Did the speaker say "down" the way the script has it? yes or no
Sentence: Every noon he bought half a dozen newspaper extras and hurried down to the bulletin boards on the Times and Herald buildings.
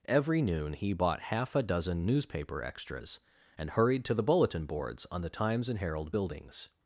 no